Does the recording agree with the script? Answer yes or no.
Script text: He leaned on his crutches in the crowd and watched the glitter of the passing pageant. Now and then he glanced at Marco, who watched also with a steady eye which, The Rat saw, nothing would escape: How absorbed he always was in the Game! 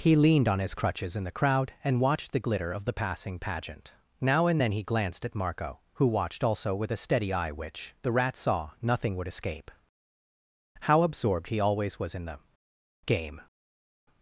yes